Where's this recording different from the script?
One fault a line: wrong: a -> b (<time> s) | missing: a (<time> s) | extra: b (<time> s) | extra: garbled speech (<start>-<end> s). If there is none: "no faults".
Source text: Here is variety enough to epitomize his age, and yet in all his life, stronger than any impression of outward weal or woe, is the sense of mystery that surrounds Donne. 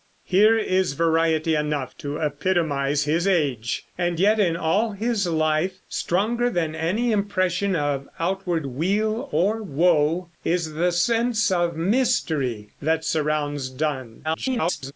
extra: garbled speech (14.2-14.9 s)